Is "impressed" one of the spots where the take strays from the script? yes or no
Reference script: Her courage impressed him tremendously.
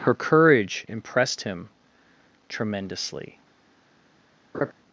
no